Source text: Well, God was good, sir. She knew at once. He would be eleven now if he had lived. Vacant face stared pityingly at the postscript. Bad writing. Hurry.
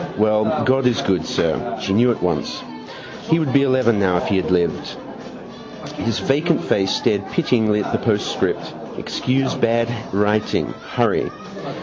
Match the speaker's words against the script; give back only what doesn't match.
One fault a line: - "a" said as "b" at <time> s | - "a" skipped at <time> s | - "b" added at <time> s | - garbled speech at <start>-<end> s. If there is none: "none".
- "was" said as "is" at 0.8 s
- "His" added at 5.9 s
- "Excuse" added at 9.0 s